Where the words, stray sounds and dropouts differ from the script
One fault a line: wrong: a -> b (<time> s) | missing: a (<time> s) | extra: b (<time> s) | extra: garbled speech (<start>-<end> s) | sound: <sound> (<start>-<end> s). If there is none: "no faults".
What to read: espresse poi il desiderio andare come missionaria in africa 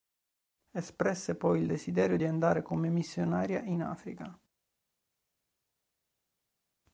extra: di (2.1 s)